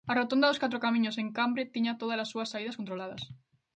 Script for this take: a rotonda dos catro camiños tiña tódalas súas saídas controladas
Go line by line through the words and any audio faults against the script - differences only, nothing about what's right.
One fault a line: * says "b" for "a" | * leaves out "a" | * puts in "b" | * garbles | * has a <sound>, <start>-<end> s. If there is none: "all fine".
* puts in "en cambre"